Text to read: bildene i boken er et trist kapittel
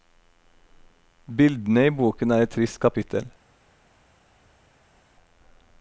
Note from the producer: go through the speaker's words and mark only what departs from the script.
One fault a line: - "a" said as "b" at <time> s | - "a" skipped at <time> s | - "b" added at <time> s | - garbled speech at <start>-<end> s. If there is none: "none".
none